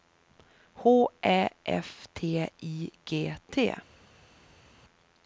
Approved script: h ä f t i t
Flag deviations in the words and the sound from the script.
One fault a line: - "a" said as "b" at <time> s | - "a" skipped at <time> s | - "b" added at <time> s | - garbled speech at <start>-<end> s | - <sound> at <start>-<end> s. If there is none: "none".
- "g" added at 3.0 s